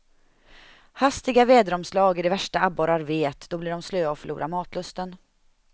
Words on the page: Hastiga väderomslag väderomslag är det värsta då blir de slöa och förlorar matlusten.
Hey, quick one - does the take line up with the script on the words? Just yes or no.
no